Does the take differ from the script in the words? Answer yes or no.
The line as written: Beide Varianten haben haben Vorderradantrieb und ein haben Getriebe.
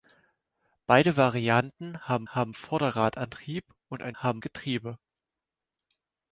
no